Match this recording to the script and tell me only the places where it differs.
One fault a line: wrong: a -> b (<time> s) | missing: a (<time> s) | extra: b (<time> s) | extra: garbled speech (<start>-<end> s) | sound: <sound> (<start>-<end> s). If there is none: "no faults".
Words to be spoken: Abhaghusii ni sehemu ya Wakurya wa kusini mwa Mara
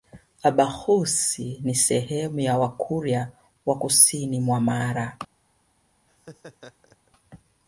sound: laugh (6.1-7.1 s)